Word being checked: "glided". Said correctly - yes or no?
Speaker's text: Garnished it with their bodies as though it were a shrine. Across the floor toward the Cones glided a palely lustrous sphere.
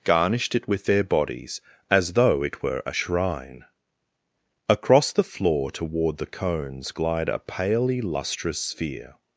no